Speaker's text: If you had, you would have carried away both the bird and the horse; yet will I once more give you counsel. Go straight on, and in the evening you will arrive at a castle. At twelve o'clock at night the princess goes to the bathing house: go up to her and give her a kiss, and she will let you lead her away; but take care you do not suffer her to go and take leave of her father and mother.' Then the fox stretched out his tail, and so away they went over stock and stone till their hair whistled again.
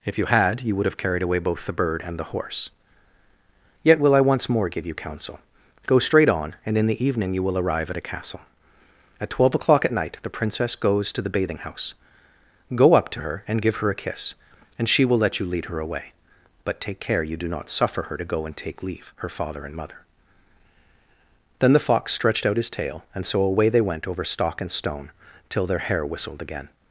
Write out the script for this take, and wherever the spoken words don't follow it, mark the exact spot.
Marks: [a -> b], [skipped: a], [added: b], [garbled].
If you had, you would have carried away both the bird and the horse; yet will I once more give you counsel. Go straight on, and in the evening you will arrive at a castle. At twelve o'clock at night the princess goes to the bathing house: go up to her and give her a kiss, and she will let you lead her away; but take care you do not suffer her to go and take leave [skipped: of] her father and mother.' Then the fox stretched out his tail, and so away they went over stock and stone till their hair whistled again.